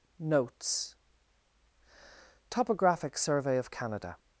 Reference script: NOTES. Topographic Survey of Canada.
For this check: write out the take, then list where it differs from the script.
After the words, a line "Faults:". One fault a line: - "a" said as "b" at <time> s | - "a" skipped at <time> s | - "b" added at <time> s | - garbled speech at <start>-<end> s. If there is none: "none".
NOTES. Topographic Survey of Canada.
Faults:
none